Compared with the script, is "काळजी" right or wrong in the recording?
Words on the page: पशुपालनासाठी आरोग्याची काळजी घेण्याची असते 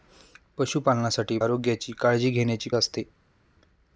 right